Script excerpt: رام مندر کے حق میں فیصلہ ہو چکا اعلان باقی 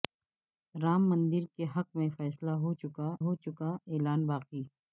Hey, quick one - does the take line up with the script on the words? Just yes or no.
no